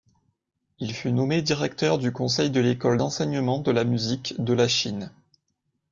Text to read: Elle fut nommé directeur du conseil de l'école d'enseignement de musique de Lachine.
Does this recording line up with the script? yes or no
no